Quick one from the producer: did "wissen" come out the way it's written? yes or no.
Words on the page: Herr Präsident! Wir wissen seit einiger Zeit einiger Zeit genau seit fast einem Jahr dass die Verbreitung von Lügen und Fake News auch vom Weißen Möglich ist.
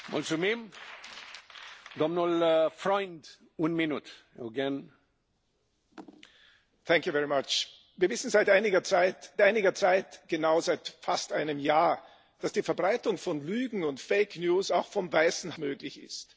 yes